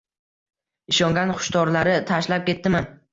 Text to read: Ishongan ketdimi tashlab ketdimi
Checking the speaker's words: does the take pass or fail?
fail